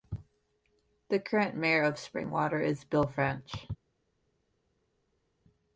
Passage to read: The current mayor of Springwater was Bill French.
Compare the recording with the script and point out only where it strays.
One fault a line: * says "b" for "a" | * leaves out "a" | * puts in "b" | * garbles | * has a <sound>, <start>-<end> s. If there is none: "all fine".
* says "is" for "was"